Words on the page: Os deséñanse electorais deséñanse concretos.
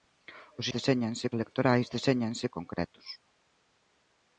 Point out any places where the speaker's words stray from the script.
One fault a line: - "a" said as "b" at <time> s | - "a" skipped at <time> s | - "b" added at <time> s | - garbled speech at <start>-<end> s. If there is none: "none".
none